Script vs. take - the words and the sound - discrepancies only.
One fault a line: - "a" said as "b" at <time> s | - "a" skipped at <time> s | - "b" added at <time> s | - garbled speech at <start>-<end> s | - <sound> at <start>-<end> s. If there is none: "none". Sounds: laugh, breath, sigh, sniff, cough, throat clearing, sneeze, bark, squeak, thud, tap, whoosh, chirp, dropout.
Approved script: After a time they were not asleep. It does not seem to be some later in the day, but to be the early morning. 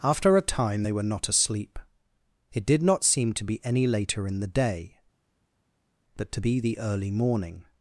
- "does" said as "did" at 2.6 s
- "some" said as "any" at 3.6 s